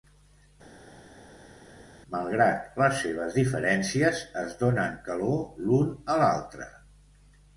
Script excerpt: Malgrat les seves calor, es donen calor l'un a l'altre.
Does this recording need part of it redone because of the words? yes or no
yes